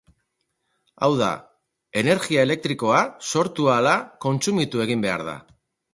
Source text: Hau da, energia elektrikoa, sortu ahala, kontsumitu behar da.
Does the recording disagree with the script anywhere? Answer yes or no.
yes